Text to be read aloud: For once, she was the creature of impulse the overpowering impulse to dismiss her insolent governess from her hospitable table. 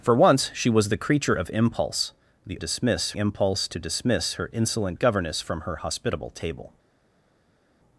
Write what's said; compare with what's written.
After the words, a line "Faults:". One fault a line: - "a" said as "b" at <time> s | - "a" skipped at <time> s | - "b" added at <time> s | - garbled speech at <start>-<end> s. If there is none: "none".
For once, she was the creature of impulse the dismiss impulse to dismiss her insolent governess from her hospitable table.
Faults:
- "overpowering" said as "dismiss" at 2.6 s